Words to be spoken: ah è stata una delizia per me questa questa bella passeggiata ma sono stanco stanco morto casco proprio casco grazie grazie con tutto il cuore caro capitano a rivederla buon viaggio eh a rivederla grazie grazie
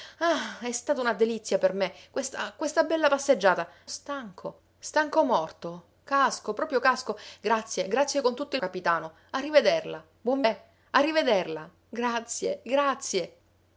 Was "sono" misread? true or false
true